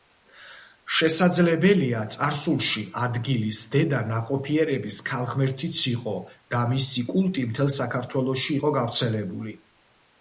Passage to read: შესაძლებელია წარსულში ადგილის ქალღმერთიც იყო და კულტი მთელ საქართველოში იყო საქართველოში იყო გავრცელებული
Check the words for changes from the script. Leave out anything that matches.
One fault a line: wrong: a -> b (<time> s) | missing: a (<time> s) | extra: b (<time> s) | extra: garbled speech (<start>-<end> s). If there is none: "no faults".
extra: დედა ნაყოფიერების (3.8 s)
extra: მისი (6.7 s)
missing: საქართველოში იყო (8.8 s)